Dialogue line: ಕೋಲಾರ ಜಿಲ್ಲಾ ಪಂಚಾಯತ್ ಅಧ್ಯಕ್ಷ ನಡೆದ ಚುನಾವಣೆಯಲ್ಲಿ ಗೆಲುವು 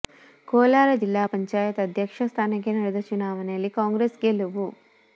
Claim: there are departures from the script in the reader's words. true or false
true